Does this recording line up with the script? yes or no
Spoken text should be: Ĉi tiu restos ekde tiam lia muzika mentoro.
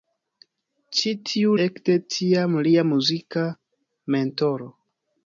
no